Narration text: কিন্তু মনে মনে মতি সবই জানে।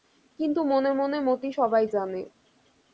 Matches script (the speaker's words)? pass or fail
pass